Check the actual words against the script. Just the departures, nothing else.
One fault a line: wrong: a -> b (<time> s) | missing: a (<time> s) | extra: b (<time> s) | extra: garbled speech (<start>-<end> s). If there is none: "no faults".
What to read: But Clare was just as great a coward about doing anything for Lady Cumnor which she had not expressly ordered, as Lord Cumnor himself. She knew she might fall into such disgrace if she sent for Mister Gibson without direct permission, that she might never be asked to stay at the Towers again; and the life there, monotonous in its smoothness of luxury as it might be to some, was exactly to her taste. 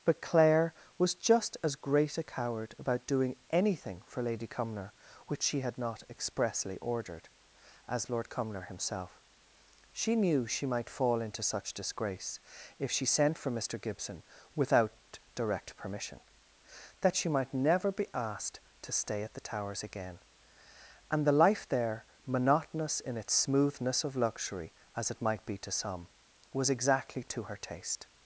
no faults